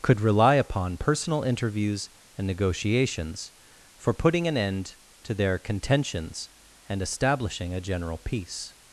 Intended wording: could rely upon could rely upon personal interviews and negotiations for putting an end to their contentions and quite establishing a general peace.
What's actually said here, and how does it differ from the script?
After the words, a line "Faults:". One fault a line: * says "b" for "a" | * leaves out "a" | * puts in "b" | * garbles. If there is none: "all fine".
could rely upon personal interviews and negotiations for putting an end to their contentions and establishing a general peace.
Faults:
* leaves out "could rely upon"
* leaves out "quite"